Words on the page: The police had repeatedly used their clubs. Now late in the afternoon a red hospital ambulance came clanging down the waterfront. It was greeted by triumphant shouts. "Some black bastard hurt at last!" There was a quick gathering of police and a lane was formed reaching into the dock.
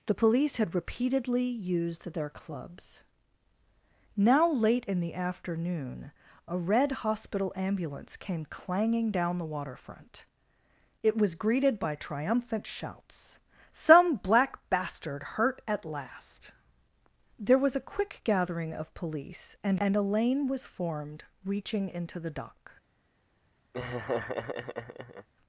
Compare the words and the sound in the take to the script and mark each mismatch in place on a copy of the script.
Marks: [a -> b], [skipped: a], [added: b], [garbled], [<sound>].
The police had repeatedly used their clubs. Now late in the afternoon a red hospital ambulance came clanging down the waterfront. It was greeted by triumphant shouts. "Some black bastard hurt at last!" There was a quick gathering of police and [added: and] a lane was formed reaching into the dock. [laugh]